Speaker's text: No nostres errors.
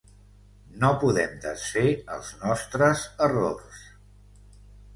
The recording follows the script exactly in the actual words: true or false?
false